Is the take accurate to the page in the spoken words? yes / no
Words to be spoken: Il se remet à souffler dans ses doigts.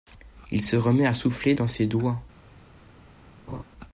yes